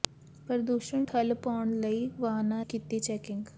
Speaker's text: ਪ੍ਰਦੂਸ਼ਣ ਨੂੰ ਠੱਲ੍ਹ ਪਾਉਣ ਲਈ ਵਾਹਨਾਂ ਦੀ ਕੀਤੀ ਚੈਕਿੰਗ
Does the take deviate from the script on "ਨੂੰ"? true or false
true